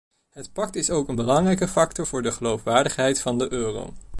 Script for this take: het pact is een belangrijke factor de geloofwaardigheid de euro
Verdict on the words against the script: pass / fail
fail